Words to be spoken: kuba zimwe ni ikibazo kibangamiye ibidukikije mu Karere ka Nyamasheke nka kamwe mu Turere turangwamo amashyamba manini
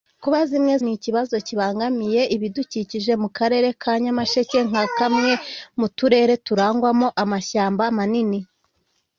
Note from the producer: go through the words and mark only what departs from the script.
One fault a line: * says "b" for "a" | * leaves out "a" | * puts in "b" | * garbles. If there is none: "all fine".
all fine